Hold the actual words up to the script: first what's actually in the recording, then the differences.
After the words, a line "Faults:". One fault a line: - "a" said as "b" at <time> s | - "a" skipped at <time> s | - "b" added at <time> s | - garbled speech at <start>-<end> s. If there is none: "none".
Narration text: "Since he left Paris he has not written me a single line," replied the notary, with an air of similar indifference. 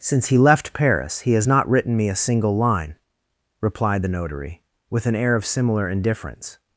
"Since he left Paris he has not written me a single line," replied the notary, with an air of similar indifference.
Faults:
none